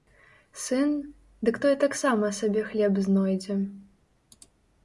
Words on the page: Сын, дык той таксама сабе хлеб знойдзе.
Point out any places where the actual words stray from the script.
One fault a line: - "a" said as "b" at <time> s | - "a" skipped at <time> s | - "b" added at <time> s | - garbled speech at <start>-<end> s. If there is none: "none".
none